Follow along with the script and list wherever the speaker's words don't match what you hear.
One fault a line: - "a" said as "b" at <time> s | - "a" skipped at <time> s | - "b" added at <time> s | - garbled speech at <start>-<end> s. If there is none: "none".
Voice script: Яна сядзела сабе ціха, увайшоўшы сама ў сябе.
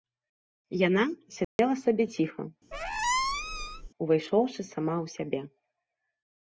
none